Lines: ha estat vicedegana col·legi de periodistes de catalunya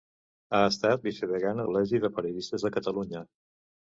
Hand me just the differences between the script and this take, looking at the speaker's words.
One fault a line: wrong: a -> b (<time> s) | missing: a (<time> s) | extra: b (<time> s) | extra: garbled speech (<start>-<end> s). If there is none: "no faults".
no faults